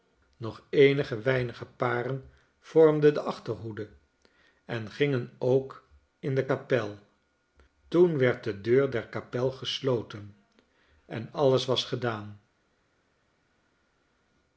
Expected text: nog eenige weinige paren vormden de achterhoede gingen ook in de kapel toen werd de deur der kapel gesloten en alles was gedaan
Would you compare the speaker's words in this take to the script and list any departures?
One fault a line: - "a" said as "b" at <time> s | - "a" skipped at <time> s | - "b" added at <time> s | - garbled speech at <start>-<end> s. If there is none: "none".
- "en" added at 4.6 s